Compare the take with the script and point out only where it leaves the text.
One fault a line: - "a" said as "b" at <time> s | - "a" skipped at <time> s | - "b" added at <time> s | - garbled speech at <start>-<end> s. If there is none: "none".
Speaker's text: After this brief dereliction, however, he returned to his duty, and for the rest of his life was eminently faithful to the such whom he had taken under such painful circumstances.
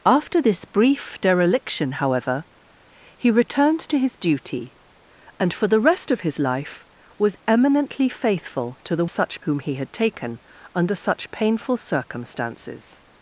none